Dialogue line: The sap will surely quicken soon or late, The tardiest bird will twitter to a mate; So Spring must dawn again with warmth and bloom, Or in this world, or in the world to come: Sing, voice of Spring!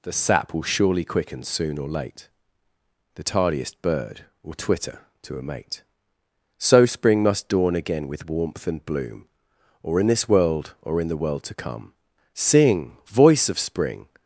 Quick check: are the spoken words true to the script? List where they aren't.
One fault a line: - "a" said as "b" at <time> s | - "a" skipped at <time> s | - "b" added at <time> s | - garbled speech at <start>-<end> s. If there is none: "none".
none